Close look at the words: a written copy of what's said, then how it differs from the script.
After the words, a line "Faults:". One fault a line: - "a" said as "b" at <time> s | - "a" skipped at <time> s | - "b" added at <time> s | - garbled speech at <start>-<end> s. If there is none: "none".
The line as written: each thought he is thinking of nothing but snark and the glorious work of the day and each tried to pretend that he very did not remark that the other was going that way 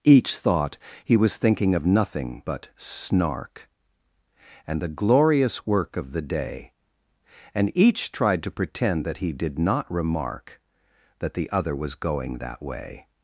each thought he was thinking of nothing but snark and the glorious work of the day and each tried to pretend that he did not remark that the other was going that way
Faults:
- "is" said as "was" at 1.1 s
- "very" skipped at 9.3 s